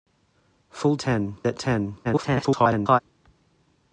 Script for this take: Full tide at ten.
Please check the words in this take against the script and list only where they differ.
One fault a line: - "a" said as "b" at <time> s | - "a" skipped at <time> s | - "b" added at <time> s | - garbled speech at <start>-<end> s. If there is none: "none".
- "tide" said as "ten" at 1.0 s
- garbled speech at 2.0-3.0 s